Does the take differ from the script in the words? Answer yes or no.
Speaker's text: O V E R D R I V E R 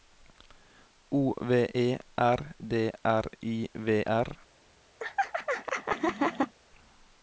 yes